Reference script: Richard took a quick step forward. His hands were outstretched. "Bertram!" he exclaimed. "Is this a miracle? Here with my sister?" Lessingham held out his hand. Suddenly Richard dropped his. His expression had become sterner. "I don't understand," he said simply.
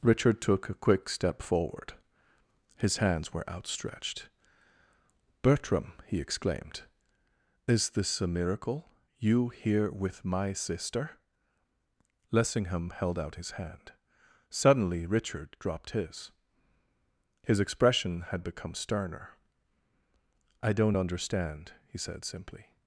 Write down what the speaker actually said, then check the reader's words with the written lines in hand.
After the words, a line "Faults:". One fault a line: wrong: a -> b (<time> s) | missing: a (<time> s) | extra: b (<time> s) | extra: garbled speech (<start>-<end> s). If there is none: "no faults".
Richard took a quick step forward. His hands were outstretched. "Bertram!" he exclaimed. "Is this a miracle? You here with my sister?" Lessingham held out his hand. Suddenly Richard dropped his. His expression had become sterner. "I don't understand," he said simply.
Faults:
extra: You (9.2 s)